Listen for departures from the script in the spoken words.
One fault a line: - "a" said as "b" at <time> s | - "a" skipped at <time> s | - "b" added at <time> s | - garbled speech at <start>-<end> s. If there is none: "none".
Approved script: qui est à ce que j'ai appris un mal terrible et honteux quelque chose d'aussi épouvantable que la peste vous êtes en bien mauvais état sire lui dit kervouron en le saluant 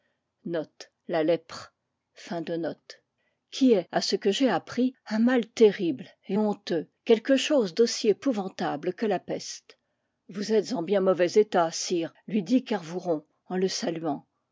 none